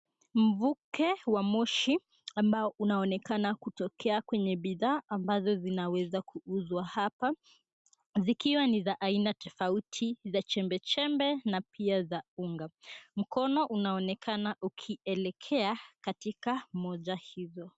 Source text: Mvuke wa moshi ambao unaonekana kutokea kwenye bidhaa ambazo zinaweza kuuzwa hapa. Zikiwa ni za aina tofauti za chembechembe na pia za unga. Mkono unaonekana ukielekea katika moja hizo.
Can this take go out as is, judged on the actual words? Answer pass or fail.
pass